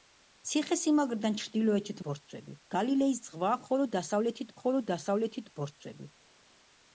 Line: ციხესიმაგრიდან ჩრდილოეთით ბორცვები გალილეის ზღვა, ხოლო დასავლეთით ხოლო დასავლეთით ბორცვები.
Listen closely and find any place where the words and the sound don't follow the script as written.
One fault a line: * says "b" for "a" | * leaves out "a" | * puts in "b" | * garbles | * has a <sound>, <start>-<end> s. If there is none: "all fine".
all fine